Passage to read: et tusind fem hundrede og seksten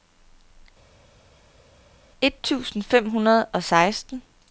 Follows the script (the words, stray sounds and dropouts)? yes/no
yes